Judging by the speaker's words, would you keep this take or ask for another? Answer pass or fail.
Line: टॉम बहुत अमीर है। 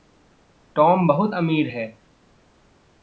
pass